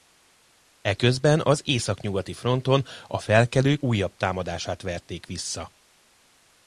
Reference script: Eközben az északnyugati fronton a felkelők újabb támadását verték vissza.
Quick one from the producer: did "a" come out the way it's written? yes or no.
yes